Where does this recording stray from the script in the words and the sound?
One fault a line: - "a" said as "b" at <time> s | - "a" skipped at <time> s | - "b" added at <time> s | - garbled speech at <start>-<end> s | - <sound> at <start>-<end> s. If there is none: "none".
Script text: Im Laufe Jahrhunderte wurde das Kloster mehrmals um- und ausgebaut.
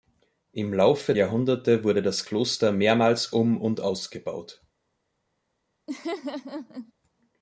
- laugh at 5.9-6.9 s